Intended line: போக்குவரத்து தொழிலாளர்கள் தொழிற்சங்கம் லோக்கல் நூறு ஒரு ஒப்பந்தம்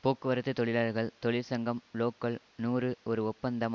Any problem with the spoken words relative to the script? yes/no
no